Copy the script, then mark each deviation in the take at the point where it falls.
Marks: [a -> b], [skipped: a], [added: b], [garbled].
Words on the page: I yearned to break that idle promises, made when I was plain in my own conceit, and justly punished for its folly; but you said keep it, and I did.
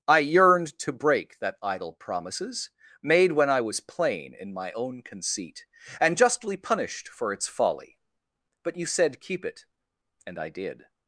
I yearned to break that idle promises, made when I was plain in my own conceit, and justly punished for its folly; but you said keep it, and I did.